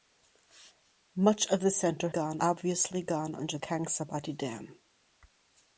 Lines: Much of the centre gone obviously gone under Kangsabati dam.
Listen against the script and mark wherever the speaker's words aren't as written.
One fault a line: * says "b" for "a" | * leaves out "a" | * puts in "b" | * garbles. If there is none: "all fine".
all fine